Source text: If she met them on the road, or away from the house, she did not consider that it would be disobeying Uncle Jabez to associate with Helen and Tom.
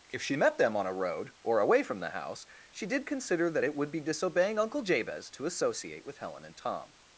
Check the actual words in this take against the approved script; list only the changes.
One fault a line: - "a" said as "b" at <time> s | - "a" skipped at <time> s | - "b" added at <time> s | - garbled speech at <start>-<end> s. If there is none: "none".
- "the" said as "a" at 0.9 s
- "not" skipped at 3.0 s